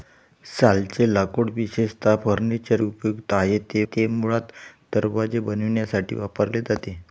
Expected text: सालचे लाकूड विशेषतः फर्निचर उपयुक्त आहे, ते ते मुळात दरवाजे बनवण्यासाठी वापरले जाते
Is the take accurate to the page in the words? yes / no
yes